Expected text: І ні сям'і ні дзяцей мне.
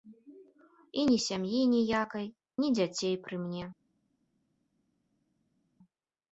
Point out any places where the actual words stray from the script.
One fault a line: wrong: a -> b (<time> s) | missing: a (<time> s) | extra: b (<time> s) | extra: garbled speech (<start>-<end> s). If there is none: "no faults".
extra: ніякай (1.8 s)
extra: пры (3.2 s)